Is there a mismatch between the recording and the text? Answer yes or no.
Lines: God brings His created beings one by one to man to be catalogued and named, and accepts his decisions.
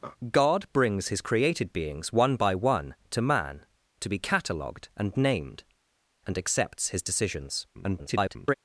yes